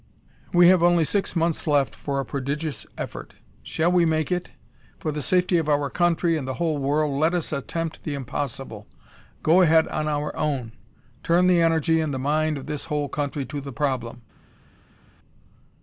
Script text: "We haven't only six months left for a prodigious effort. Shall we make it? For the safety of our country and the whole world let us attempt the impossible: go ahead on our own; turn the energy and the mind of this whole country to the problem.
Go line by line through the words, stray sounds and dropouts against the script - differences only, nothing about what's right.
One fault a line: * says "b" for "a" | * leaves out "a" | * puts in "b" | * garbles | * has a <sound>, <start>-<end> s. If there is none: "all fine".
* says "have" for "haven't"